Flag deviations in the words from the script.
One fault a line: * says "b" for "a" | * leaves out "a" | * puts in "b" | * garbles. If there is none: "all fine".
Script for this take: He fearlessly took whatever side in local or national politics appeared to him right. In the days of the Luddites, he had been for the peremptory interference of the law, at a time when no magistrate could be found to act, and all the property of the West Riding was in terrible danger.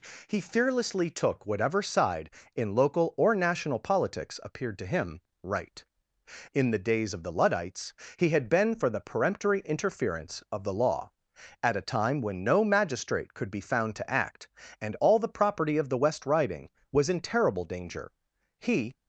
* puts in "He"